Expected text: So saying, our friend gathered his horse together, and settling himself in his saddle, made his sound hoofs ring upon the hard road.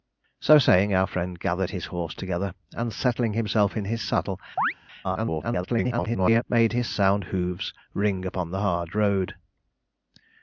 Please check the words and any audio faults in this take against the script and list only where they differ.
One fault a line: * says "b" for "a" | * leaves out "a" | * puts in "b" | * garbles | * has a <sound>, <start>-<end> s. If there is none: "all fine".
* has a chirp, 4.6-4.7 s
* garbles